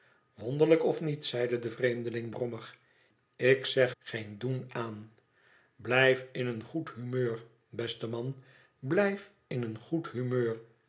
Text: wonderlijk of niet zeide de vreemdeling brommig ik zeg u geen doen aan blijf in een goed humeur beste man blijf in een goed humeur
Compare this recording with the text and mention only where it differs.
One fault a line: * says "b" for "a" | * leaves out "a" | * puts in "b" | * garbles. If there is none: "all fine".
* leaves out "u"